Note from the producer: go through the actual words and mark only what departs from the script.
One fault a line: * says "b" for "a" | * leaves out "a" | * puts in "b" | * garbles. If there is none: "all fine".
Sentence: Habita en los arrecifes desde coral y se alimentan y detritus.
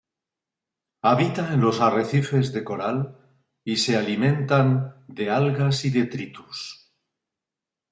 * says "de" for "desde"
* puts in "de algas"